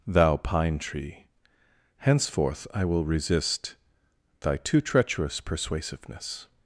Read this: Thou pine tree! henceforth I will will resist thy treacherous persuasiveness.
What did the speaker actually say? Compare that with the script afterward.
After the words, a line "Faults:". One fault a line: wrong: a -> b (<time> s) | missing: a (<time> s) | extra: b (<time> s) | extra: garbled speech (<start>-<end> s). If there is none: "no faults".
Thou pine tree! henceforth I will resist thy too treacherous persuasiveness.
Faults:
missing: will (3.0 s)
extra: too (4.6 s)